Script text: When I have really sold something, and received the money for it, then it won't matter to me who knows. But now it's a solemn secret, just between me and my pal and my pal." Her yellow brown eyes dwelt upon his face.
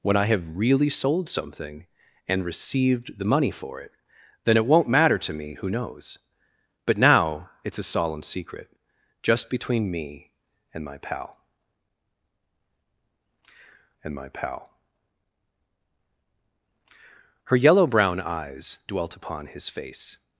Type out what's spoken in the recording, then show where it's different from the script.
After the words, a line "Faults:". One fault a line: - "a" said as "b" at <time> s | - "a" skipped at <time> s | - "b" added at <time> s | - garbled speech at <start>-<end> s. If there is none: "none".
When I have really sold something, and received the money for it, then it won't matter to me who knows. But now it's a solemn secret, just between me and my pal and my pal." Her yellow brown eyes dwelt upon his face.
Faults:
none